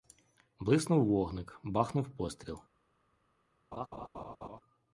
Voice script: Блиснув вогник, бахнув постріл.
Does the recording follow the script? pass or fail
pass